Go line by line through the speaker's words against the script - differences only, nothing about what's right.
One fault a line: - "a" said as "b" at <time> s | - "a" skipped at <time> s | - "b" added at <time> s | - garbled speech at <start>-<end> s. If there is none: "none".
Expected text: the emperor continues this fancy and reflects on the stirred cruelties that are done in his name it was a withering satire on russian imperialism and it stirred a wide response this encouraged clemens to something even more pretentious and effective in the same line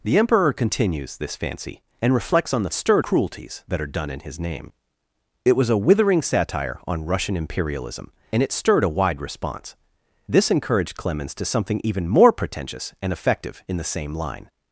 none